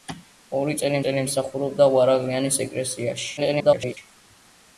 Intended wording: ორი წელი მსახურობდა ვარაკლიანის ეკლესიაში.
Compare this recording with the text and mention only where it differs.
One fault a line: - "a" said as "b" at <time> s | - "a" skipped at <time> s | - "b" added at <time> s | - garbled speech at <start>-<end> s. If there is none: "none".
- "წელი" added at 1.0 s
- garbled speech at 3.4-4.0 s